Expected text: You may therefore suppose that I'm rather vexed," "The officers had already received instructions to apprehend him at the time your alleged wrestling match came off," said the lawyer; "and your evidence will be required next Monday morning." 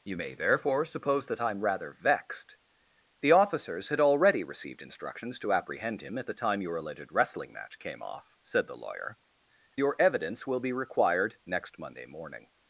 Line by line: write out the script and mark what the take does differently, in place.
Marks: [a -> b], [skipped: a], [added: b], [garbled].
You may therefore suppose that I'm rather vexed," "The officers had already received instructions to apprehend him at the time your alleged wrestling match came off," said the lawyer; [skipped: "and] your evidence will be required next Monday morning."